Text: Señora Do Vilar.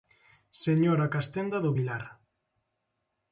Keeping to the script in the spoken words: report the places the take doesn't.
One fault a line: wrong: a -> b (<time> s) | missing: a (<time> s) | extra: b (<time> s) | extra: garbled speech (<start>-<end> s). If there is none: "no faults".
extra: Castenda (1.1 s)